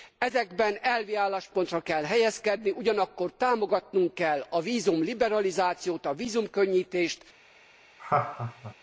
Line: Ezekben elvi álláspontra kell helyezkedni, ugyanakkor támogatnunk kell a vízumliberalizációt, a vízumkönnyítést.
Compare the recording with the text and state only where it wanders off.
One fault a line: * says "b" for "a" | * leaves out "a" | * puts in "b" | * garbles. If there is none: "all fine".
all fine